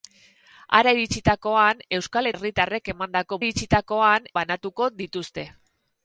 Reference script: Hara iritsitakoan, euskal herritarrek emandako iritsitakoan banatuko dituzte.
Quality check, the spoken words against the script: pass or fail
pass